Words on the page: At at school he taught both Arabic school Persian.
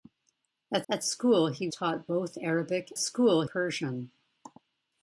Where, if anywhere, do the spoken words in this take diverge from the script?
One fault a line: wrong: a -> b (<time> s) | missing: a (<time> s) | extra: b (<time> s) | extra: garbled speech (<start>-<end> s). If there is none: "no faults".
no faults